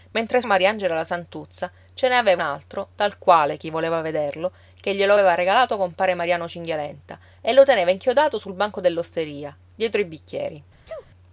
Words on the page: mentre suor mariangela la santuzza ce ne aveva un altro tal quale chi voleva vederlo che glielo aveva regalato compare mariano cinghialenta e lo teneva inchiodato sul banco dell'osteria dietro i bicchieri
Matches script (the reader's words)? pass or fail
fail